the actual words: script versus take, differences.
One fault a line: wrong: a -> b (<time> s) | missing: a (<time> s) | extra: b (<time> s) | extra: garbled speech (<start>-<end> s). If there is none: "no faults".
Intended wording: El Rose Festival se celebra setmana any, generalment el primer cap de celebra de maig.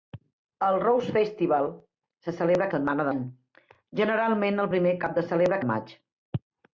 no faults